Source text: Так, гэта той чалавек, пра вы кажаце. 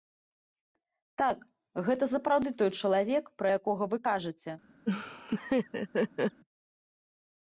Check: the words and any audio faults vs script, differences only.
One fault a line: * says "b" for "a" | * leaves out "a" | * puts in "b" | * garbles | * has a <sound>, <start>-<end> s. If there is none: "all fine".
* puts in "сапраўды"
* puts in "якога"
* has a laugh, 4.9-6.4 s